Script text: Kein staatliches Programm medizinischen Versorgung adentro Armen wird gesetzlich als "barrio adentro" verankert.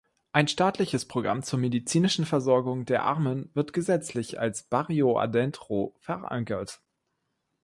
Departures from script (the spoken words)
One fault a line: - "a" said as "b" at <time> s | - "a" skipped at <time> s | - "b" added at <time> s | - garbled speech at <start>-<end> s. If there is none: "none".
- "Kein" said as "Ein" at 0.3 s
- "zur" added at 1.4 s
- "adentro" said as "der" at 2.9 s